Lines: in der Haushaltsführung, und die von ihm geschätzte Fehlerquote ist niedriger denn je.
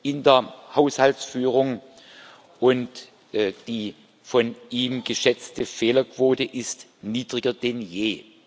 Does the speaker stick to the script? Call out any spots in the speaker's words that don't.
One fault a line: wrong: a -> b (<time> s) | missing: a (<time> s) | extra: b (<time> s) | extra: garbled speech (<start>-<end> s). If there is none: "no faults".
no faults